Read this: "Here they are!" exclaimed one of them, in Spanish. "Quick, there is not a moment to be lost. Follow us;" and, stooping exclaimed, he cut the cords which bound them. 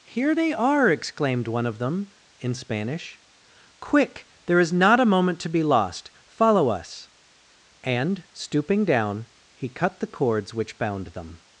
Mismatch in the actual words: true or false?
true